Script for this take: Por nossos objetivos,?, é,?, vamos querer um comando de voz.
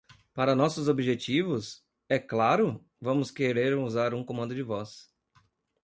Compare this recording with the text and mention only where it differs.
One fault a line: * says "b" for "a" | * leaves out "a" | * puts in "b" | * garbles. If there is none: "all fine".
* says "Para" for "Por"
* puts in "claro"
* puts in "usar"